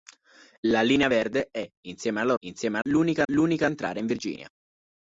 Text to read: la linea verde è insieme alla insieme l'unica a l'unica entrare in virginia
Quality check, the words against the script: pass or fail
pass